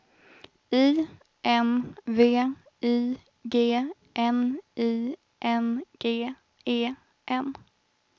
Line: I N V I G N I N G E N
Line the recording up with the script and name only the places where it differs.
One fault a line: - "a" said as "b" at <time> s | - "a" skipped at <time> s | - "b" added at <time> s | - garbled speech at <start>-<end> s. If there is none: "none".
none